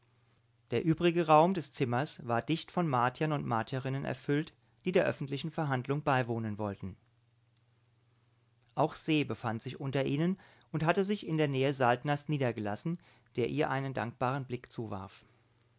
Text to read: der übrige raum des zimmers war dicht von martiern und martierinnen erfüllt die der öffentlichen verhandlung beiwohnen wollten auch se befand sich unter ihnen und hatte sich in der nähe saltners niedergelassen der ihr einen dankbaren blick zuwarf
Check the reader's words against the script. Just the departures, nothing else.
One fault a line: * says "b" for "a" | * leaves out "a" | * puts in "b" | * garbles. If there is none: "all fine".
all fine